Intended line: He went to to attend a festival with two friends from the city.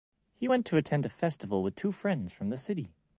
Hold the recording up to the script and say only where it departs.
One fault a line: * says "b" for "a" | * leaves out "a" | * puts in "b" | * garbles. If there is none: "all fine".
* leaves out "to"